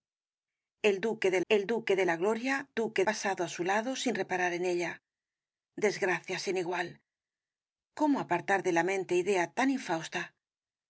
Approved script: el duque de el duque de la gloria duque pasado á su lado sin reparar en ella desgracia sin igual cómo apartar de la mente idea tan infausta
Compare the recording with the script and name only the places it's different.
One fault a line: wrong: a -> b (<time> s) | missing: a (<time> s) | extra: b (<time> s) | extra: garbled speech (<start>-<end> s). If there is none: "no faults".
no faults